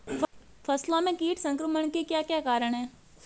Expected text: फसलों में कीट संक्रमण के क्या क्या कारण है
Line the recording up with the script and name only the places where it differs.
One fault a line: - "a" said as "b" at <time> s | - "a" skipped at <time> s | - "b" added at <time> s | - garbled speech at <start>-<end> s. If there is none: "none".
none